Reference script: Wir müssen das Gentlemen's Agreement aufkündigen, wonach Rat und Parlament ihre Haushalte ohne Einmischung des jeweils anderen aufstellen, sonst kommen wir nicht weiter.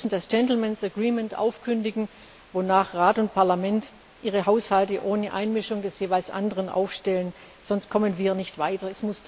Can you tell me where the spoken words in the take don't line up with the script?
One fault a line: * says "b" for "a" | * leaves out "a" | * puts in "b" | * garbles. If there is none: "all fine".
all fine